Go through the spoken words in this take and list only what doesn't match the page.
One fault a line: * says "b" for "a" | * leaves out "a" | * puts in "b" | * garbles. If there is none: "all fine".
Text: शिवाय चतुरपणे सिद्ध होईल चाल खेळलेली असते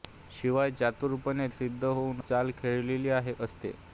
all fine